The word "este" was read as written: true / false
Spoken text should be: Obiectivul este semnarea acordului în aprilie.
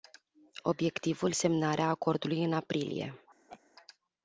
false